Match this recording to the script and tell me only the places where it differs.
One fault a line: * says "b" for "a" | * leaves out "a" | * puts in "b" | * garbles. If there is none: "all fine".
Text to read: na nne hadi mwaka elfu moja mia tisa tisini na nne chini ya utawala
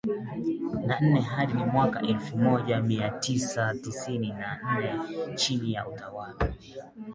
all fine